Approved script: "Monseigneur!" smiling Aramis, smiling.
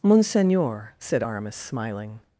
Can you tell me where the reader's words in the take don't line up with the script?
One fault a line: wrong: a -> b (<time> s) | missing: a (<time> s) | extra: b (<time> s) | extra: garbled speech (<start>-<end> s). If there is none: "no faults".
wrong: smiling -> said (1.0 s)